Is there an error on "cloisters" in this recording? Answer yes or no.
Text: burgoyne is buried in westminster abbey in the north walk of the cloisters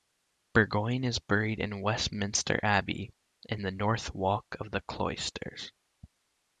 no